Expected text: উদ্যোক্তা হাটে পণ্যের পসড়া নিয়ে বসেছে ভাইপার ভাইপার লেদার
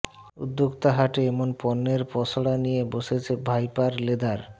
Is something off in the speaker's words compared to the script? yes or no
yes